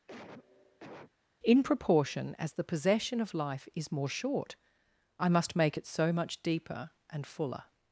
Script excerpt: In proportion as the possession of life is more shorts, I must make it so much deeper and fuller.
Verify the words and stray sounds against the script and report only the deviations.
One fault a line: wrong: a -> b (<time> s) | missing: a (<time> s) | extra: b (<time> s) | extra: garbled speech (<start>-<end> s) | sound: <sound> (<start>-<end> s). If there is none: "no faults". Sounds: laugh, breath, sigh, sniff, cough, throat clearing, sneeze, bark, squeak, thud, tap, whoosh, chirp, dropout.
sound: cough (0.1-1.1 s)
wrong: shorts -> short (4.1 s)